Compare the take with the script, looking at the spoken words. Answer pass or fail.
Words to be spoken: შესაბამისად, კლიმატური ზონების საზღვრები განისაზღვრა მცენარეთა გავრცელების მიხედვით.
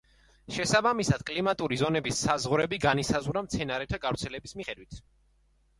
pass